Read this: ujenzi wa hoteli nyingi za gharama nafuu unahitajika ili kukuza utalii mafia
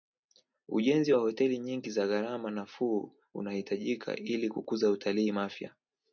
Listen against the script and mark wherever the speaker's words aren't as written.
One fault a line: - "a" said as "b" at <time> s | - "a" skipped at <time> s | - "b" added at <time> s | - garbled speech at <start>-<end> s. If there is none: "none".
none